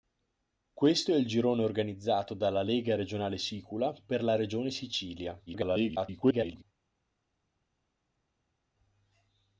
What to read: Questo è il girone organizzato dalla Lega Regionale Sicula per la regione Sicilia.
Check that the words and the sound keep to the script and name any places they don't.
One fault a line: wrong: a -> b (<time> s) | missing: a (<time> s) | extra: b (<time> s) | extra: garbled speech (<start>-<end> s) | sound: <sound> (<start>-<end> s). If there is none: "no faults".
extra: garbled speech (5.5-6.6 s)